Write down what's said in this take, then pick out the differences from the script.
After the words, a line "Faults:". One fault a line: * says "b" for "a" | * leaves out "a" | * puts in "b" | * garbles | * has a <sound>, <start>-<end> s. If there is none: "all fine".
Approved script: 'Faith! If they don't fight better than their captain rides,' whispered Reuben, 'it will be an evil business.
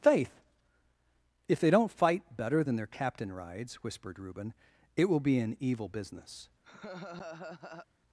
'Faith! If they don't fight better than their captain rides,' whispered Reuben, 'it will be an evil business.
Faults:
* has a laugh, 6.6-7.9 s